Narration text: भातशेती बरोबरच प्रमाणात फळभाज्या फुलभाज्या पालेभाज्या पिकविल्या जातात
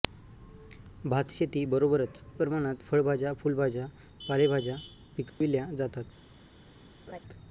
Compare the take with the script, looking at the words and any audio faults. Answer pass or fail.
fail